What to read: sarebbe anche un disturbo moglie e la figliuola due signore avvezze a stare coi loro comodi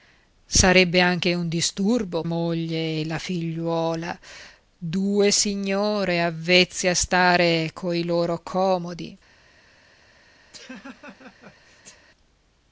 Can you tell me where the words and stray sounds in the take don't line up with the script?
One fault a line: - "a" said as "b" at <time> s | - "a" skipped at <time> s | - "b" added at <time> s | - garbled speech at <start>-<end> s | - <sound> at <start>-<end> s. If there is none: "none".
- laugh at 10.5-12.1 s